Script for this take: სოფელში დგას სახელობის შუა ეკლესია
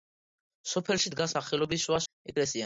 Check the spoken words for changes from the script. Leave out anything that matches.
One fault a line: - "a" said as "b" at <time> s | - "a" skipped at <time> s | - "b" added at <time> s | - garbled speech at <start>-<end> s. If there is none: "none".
none